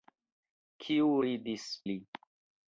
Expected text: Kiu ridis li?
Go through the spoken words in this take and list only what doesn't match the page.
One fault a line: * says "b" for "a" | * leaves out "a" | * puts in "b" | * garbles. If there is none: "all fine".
all fine